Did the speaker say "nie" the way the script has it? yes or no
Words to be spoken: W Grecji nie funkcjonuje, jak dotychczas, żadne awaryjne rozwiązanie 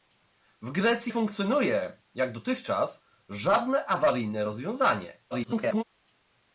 no